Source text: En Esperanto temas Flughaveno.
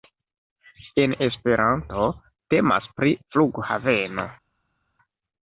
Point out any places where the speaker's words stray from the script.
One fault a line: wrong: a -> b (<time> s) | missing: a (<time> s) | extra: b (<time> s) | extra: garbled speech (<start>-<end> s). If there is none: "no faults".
extra: pri (3.0 s)